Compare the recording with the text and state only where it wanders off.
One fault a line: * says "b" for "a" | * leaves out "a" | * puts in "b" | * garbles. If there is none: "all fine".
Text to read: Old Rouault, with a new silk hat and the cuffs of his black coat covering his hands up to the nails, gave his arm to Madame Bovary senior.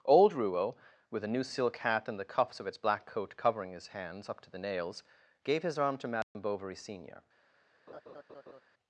* says "its" for "his"